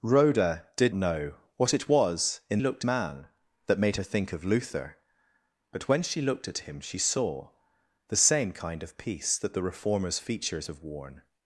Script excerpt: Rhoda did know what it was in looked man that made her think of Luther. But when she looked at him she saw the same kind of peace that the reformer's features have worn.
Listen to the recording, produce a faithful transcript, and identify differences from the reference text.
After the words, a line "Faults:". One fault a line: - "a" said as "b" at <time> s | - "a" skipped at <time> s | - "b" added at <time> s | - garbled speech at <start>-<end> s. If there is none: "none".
Rhoda did know what it was in looked man that made her think of Luther. But when she looked at him she saw the same kind of peace that the reformer's features have worn.
Faults:
none